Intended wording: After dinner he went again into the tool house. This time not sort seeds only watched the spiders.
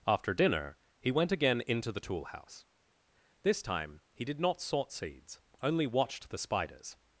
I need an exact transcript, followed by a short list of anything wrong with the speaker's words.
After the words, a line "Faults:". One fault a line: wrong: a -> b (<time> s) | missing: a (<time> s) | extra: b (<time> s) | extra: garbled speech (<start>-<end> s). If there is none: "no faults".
After dinner he went again into the tool house. This time he did not sort seeds only watched the spiders.
Faults:
extra: he did (4.1 s)